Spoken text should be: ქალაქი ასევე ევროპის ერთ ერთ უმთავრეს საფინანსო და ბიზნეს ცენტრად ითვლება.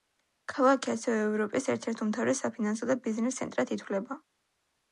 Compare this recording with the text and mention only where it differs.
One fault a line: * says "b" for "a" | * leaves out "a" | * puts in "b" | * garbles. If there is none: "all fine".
all fine